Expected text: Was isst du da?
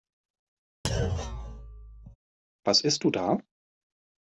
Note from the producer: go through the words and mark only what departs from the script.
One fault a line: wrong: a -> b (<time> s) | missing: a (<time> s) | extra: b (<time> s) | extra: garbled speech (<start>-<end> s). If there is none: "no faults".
no faults